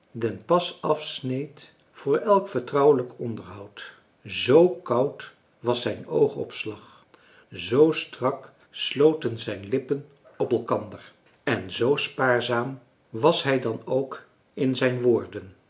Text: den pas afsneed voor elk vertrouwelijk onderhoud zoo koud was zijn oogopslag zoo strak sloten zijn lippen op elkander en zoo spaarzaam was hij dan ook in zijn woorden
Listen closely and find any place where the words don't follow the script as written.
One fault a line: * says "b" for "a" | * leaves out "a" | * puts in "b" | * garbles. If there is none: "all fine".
all fine